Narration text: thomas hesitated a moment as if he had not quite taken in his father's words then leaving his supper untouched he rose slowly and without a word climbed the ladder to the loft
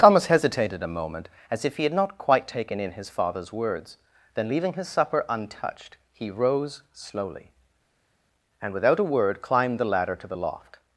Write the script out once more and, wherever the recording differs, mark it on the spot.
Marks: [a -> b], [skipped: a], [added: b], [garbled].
thomas hesitated a moment as if he had not quite taken in his father's words then leaving his supper untouched he rose slowly and without a word climbed the ladder to the loft